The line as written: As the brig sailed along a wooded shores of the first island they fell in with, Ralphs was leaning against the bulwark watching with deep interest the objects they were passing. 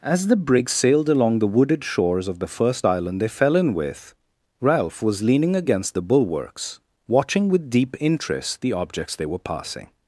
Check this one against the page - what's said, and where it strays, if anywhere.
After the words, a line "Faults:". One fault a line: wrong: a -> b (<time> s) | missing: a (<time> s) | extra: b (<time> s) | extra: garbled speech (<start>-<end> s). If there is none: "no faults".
As the brig sailed along the wooded shores of the first island they fell in with, Ralph was leaning against the bulwarks watching with deep interest the objects they were passing.
Faults:
wrong: a -> the (1.4 s)
wrong: Ralphs -> Ralph (4.6 s)
wrong: bulwark -> bulwarks (6.0 s)